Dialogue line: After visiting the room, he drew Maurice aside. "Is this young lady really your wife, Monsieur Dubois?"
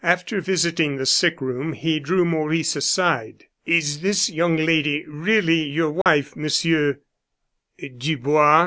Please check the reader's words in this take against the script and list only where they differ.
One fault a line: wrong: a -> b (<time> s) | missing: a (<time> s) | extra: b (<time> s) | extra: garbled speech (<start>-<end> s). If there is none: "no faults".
extra: sick (1.0 s)